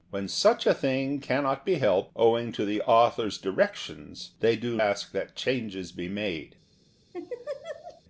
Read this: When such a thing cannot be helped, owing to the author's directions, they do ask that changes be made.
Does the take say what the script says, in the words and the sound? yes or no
no